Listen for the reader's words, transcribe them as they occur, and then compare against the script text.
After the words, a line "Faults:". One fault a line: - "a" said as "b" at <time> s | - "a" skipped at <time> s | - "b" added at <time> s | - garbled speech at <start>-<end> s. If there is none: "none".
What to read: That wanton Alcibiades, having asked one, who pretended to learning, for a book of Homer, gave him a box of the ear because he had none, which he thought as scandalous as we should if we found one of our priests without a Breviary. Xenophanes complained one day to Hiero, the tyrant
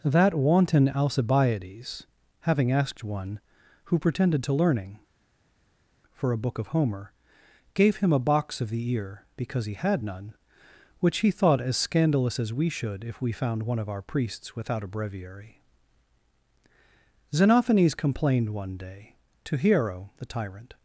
That wanton Alcibiades, having asked one, who pretended to learning, for a book of Homer, gave him a box of the ear because he had none, which he thought as scandalous as we should if we found one of our priests without a Breviary. Xenophanes complained one day to Hiero, the tyrant
Faults:
none